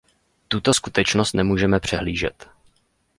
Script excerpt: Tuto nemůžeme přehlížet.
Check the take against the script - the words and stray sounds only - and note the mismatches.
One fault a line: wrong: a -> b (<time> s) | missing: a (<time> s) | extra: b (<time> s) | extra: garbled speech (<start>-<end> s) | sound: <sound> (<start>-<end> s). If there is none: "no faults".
extra: skutečnost (0.7 s)